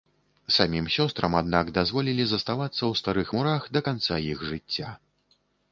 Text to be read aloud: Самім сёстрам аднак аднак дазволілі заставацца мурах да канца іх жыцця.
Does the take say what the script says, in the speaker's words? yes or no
no